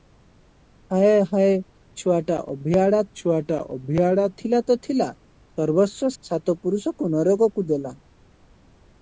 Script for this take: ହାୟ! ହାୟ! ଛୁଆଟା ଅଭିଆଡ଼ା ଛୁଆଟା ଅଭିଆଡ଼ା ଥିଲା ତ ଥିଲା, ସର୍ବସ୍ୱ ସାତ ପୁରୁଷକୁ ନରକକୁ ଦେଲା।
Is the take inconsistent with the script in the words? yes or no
no